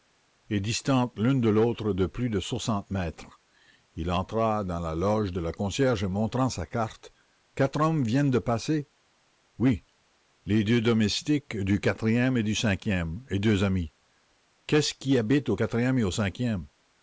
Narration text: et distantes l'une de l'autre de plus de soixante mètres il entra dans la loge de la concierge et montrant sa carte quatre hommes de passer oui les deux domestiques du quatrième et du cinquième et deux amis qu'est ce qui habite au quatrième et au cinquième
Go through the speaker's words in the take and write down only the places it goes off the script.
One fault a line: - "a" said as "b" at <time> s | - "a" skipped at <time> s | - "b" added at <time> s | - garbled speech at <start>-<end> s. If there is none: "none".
- "viennent" added at 8.0 s